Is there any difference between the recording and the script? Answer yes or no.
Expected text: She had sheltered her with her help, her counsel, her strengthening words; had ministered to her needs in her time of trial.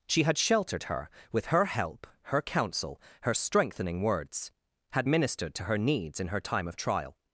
no